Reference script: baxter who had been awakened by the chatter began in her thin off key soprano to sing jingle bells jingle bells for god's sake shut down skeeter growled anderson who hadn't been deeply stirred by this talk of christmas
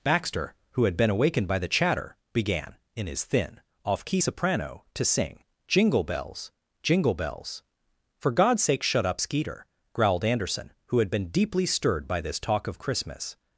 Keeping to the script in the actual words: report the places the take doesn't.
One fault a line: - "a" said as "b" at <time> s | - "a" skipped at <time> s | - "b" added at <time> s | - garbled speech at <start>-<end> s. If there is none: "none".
- "her" said as "his" at 3.0 s
- "down" said as "up" at 9.1 s
- "hadn't" said as "had" at 11.0 s